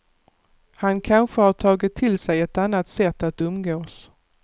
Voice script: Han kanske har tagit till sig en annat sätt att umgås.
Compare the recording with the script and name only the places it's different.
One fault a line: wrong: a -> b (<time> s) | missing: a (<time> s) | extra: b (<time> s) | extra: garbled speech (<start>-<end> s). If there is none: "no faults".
wrong: en -> ett (2.4 s)